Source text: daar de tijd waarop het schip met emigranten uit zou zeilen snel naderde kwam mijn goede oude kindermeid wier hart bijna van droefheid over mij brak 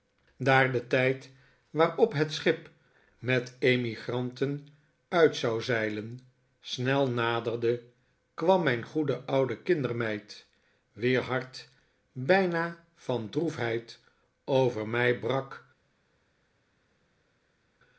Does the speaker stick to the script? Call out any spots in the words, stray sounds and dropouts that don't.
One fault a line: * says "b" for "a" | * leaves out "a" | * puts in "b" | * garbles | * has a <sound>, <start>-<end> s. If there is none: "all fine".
all fine